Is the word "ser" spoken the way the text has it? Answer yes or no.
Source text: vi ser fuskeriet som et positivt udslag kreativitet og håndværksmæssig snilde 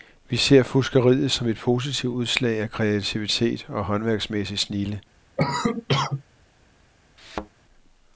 yes